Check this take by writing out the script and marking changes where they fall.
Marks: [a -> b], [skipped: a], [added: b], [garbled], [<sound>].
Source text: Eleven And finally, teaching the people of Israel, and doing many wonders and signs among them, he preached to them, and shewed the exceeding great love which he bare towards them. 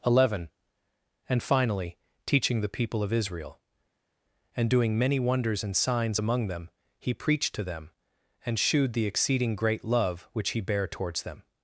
Eleven And finally, teaching the people of Israel, and doing many wonders and signs among them, he preached to them, and shewed the exceeding great love which he bare towards them.